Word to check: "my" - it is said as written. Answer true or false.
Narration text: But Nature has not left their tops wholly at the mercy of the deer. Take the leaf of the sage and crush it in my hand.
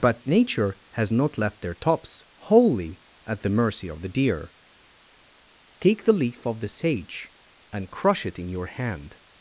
false